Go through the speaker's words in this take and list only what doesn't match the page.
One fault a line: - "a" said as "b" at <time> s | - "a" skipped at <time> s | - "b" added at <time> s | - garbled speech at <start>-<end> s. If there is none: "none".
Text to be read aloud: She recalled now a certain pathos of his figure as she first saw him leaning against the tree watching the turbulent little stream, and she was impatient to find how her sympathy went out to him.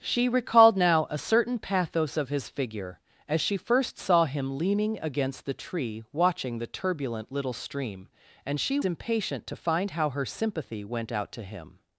- "was" skipped at 8.8 s